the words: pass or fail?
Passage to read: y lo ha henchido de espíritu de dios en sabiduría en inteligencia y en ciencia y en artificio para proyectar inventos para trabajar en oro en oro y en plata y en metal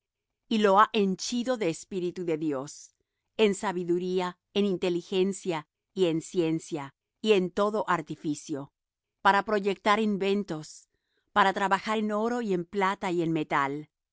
fail